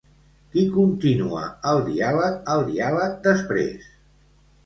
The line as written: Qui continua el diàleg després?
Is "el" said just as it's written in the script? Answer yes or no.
yes